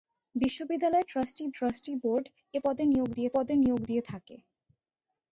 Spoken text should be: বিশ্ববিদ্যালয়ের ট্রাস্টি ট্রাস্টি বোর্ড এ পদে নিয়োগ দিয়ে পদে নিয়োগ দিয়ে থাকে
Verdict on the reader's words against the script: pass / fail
pass